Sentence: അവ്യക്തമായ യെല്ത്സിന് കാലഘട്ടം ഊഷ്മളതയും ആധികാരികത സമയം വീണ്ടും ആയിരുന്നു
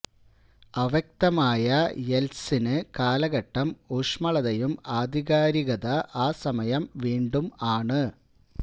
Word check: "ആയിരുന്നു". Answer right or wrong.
wrong